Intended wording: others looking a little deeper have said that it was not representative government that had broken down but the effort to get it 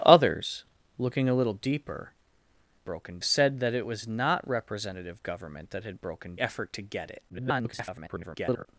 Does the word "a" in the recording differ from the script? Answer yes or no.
no